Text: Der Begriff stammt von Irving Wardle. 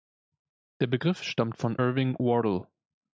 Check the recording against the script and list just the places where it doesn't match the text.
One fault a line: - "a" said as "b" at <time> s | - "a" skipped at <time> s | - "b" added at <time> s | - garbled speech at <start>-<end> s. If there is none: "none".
none